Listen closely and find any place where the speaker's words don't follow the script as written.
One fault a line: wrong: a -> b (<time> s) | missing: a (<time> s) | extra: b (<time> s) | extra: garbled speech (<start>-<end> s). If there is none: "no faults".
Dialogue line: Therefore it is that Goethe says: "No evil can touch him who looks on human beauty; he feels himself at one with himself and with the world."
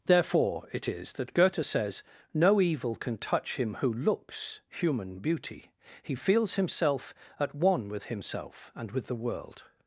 missing: on (4.6 s)